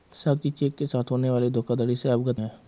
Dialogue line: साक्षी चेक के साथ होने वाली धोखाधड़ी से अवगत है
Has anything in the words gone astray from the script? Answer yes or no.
no